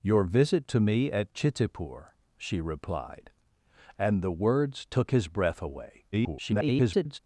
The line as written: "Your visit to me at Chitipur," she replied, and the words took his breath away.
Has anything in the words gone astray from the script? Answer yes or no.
yes